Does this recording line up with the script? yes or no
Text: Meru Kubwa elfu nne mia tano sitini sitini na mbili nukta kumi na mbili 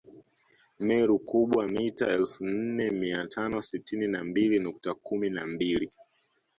no